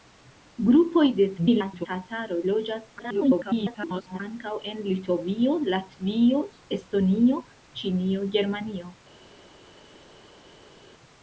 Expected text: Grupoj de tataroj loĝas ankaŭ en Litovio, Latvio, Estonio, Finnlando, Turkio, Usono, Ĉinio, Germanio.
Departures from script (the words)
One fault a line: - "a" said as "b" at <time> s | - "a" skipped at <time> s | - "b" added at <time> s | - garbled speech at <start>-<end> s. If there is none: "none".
- garbled speech at 1.4-1.9 s
- garbled speech at 3.0-4.2 s
- "Finnlando Turkio Usono" skipped at 7.4 s